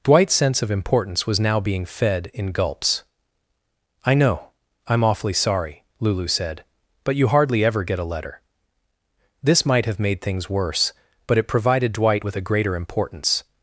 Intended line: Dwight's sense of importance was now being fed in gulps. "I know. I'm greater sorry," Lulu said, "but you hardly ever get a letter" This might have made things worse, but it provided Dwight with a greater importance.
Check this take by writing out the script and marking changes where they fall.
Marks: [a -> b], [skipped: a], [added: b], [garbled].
Dwight's sense of importance was now being fed in gulps. "I know. I'm [greater -> awfully] sorry," Lulu said, "but you hardly ever get a letter" This might have made things worse, but it provided Dwight with a greater importance.